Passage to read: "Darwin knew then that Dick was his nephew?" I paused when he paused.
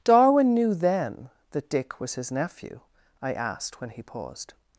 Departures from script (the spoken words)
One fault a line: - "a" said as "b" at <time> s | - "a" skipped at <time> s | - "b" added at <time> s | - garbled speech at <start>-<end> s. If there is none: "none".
- "paused" said as "asked" at 3.3 s